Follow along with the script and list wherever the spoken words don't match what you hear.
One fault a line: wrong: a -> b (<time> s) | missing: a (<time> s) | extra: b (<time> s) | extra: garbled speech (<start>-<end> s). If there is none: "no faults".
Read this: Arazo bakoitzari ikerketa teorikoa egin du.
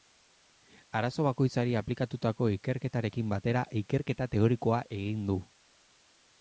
extra: aplikatutako ikerketarekin batera (1.8 s)